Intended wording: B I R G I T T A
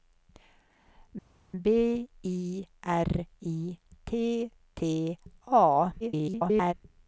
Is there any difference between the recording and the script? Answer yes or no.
yes